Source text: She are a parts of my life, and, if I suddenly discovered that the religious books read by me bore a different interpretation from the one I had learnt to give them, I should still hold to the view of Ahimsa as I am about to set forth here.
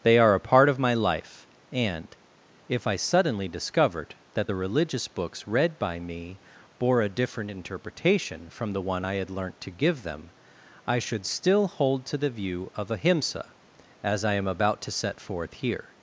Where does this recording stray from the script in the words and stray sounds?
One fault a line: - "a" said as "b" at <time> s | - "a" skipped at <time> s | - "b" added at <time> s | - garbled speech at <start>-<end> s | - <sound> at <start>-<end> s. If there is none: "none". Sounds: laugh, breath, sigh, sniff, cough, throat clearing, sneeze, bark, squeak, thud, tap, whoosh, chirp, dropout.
- "She" said as "They" at 0.0 s
- "parts" said as "part" at 0.4 s